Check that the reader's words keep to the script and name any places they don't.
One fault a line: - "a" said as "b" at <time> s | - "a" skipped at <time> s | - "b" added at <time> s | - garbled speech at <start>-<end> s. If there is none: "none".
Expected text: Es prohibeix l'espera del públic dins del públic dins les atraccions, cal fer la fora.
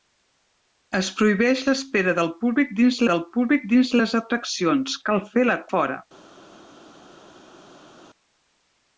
none